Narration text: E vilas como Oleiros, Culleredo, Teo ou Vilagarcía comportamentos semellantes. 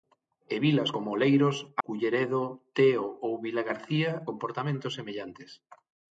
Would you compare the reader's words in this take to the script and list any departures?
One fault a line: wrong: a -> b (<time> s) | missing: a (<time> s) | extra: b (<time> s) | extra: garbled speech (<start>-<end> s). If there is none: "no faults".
no faults